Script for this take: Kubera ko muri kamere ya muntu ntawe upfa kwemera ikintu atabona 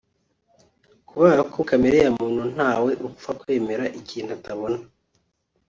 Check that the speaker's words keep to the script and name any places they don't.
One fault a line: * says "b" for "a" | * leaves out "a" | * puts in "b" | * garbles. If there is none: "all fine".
* leaves out "muri"